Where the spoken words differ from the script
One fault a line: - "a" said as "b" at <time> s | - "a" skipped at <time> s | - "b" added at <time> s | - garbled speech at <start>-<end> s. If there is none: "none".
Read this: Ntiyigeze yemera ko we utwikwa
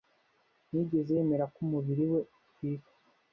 - "umubiri" added at 1.6 s